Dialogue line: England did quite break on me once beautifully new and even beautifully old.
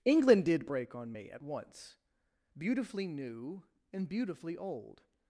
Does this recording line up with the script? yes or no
no